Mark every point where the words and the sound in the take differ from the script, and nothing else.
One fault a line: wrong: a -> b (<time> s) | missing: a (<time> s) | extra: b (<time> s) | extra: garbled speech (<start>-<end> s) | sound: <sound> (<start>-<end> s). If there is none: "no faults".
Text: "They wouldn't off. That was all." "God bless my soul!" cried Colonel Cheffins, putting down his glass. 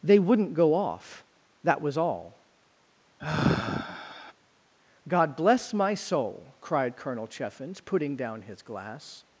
extra: go (0.5 s)
sound: sigh (3.2-4.3 s)